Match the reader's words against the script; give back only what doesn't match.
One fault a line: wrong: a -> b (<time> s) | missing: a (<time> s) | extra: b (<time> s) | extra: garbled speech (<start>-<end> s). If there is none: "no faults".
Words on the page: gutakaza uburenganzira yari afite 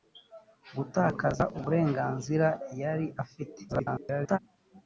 extra: garbled speech (3.7-4.4 s)